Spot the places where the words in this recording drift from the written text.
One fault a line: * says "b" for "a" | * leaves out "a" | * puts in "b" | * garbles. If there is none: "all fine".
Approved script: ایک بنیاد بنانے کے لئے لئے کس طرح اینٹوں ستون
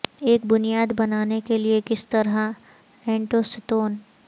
* leaves out "لئے"